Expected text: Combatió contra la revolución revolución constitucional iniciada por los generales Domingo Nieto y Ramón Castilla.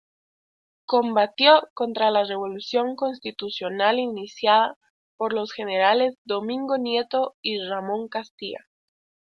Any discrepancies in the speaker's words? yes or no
yes